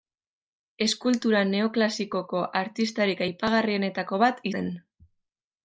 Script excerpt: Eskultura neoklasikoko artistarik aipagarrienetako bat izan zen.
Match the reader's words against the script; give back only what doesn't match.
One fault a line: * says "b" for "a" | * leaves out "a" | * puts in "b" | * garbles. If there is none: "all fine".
* leaves out "izan"